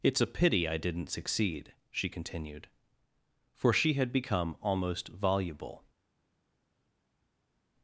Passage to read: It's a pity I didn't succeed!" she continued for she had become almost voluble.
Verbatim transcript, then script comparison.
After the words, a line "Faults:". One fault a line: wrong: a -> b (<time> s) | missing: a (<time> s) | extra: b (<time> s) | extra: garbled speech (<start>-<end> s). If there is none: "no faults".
It's a pity I didn't succeed!" she continued for she had become almost voluble.
Faults:
no faults